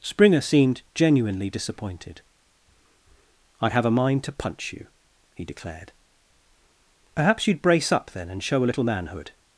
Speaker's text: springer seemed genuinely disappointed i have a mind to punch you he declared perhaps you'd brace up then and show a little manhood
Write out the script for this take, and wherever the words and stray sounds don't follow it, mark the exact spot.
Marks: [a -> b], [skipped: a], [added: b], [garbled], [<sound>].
springer seemed genuinely disappointed i have a mind to punch you he declared perhaps you'd brace up then and show a little manhood